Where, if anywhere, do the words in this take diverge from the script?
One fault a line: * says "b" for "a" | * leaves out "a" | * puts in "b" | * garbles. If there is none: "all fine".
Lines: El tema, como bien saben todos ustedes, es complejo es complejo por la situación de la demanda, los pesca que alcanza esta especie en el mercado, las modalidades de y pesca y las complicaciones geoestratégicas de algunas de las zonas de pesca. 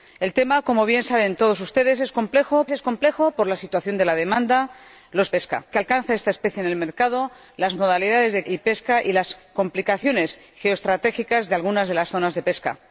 all fine